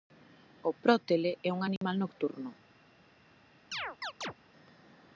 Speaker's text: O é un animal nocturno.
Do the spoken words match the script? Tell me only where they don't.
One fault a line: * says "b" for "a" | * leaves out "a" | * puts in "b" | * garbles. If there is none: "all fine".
* puts in "prótele"